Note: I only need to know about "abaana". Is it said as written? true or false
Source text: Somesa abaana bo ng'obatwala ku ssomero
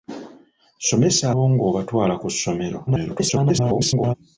false